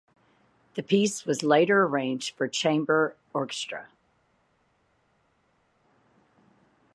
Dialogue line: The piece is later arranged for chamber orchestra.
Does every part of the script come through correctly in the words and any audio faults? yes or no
no